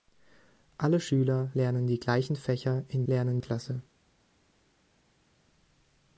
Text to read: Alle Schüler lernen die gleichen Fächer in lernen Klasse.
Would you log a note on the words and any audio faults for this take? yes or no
no